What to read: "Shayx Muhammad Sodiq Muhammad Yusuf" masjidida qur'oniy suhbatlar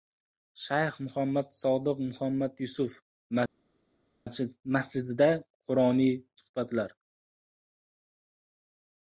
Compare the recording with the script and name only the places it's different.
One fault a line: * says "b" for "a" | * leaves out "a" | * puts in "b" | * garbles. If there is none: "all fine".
all fine